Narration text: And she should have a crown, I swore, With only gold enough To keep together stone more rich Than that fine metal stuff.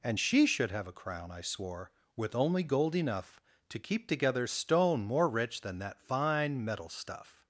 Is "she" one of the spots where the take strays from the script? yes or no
no